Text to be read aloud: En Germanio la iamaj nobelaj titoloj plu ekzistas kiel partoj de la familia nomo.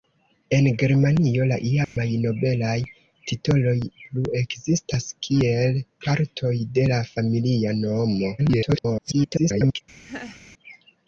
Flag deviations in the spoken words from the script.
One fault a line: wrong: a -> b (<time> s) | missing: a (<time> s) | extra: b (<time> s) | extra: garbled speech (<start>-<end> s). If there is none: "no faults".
extra: garbled speech (8.4-9.8 s)